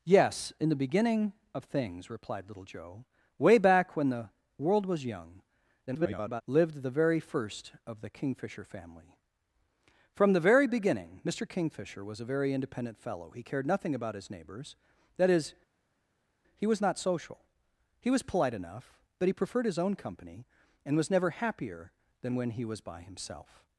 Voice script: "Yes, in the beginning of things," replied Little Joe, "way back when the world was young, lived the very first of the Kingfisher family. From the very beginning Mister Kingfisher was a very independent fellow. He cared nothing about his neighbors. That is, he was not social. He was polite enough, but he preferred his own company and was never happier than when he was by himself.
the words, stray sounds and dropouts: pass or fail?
fail